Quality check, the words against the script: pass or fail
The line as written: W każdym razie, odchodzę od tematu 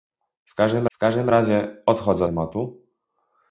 fail